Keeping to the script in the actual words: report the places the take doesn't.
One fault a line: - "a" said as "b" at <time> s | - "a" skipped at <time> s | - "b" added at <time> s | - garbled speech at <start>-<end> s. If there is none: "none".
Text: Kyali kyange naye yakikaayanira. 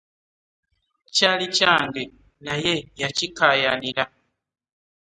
none